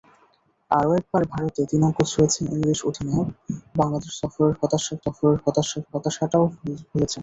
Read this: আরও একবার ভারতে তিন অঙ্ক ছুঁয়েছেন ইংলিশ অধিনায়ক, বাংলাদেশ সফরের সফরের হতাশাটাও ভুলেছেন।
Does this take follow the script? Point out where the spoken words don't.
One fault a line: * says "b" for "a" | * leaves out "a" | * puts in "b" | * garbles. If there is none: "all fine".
all fine